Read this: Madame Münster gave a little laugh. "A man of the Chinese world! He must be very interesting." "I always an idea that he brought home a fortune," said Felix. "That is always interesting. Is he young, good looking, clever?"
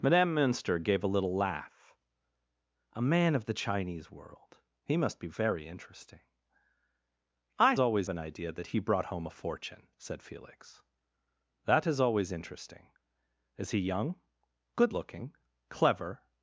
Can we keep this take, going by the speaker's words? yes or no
yes